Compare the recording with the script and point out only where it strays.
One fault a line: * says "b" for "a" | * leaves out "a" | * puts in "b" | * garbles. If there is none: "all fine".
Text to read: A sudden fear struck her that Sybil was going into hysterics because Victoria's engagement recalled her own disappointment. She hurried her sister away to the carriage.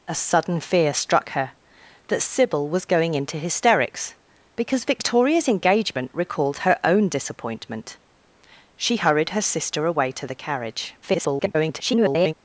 * garbles